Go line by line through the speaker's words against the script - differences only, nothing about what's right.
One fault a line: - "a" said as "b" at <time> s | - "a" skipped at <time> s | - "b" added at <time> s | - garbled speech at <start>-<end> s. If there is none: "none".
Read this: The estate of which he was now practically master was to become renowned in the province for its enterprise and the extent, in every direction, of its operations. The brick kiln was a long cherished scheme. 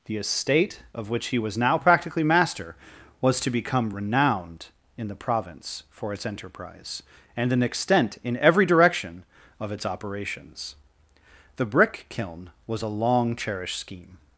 - "the" said as "an" at 7.5 s